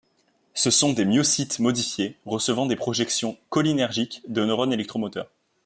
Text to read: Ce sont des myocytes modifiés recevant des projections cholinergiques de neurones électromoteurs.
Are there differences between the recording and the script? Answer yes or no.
no